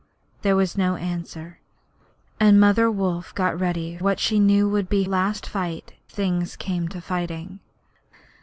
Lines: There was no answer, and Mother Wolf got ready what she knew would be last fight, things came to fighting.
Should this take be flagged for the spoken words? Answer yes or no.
no